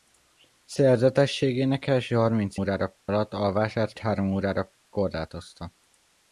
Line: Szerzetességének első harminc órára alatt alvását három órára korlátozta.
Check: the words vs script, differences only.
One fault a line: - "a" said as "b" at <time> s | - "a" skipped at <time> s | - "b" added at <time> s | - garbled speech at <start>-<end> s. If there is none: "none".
none